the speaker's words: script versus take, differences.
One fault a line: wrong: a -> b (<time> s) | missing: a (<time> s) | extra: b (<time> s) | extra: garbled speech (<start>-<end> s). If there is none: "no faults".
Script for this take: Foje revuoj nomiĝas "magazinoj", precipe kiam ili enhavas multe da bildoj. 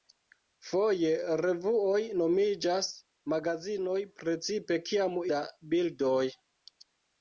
missing: ili enhavas multe (5.2 s)